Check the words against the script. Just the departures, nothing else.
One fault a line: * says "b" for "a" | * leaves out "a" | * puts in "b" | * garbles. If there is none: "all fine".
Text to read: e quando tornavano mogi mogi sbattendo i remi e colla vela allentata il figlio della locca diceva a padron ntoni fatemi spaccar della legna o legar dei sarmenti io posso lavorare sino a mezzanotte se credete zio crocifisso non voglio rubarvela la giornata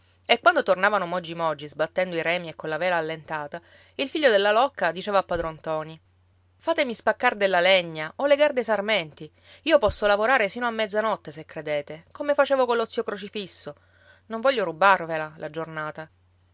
* puts in "come facevo collo"